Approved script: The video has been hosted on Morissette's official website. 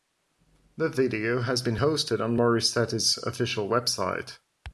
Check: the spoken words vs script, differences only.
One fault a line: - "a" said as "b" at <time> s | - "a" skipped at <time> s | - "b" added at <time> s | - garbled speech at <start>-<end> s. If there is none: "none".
none